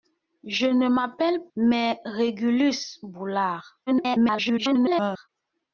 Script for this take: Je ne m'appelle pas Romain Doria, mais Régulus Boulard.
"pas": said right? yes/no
no